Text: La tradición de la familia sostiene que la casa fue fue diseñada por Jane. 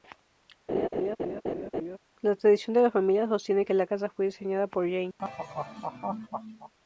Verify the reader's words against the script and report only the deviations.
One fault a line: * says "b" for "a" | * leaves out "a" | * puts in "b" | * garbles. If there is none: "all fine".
* leaves out "fue"